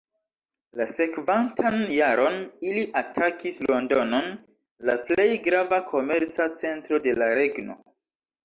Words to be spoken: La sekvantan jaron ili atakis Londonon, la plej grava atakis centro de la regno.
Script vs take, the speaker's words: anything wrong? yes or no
yes